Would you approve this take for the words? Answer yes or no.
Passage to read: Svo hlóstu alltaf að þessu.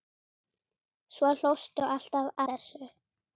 no